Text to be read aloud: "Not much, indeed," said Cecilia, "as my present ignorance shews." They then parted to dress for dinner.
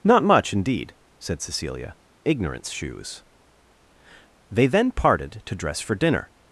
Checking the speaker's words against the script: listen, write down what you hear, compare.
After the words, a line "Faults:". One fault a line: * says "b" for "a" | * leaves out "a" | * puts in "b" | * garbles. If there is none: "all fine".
"Not much, indeed," said Cecilia, "ignorance shews." They then parted to dress for dinner.
Faults:
* leaves out "as my present"